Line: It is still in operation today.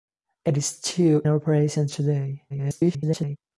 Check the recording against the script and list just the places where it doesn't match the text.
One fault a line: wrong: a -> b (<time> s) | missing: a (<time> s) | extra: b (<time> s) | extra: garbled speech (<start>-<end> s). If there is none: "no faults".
missing: in (1.2 s)
extra: garbled speech (2.5-3.4 s)